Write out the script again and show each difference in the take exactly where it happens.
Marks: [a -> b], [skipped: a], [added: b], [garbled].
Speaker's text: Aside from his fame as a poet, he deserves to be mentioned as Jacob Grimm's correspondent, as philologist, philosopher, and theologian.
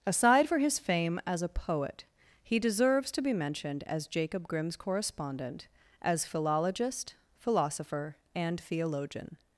Aside [from -> for] his fame as a poet, he deserves to be mentioned as Jacob Grimm's correspondent, as philologist, philosopher, and theologian.